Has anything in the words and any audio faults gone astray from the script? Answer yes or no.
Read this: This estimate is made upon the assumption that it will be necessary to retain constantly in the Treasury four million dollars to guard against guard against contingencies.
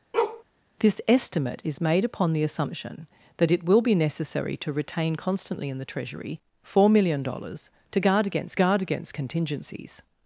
yes